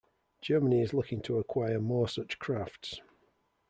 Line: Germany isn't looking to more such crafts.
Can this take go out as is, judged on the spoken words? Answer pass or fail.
fail